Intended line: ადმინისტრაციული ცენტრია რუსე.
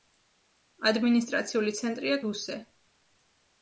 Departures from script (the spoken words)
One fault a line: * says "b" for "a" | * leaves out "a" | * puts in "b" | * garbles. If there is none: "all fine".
all fine